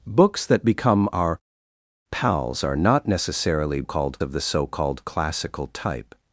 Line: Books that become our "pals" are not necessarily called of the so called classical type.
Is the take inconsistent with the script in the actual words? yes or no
no